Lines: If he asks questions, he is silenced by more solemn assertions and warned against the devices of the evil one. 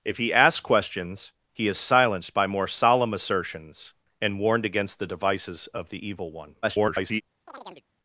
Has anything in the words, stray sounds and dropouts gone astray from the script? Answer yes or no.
yes